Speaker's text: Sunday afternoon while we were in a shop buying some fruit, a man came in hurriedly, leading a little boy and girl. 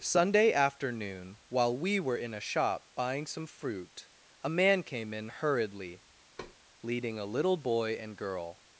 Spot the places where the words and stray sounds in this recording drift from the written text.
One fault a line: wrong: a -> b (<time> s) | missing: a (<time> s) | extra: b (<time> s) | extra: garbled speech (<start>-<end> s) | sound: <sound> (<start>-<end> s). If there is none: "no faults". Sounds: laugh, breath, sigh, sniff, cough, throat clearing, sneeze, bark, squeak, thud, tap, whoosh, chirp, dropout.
sound: thud (6.4-6.6 s)